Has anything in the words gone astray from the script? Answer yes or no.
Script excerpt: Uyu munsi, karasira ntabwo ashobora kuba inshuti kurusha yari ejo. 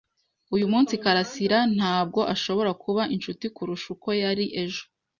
yes